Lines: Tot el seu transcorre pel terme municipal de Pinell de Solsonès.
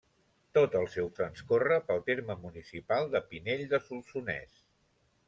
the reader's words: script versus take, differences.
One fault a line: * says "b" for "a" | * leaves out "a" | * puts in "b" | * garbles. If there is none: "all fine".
all fine